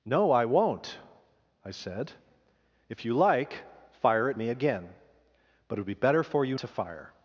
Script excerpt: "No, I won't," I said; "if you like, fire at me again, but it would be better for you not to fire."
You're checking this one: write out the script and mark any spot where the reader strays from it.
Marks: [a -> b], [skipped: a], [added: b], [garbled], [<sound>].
"No, I won't," I said; "if you like, fire at me again, but it would be better for you [skipped: not] to fire."